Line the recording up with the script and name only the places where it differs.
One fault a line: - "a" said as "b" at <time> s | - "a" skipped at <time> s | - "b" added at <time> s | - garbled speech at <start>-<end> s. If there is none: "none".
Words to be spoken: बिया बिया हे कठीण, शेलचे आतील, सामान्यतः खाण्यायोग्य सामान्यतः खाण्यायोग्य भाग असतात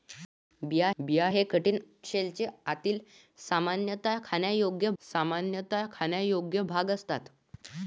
none